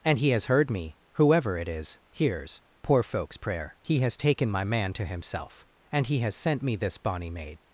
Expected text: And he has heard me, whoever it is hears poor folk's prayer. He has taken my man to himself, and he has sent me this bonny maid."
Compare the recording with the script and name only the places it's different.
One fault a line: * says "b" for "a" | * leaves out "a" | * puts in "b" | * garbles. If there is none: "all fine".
all fine